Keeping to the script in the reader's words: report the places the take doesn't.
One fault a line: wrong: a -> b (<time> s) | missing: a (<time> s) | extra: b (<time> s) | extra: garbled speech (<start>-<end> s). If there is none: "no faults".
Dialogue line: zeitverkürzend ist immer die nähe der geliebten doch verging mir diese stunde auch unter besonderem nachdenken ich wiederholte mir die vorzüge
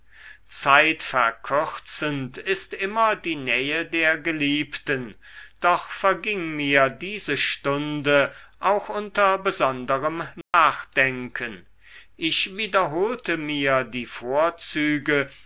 no faults